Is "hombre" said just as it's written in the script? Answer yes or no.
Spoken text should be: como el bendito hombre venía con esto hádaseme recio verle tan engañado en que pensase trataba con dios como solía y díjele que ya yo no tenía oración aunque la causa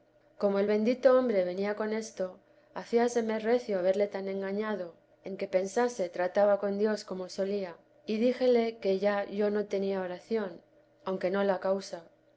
yes